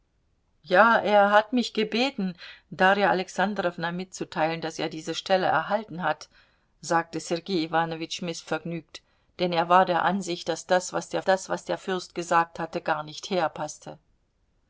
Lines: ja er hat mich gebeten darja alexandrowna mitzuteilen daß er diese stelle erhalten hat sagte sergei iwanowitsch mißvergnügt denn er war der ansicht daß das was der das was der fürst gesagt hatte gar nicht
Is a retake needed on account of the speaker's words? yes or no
no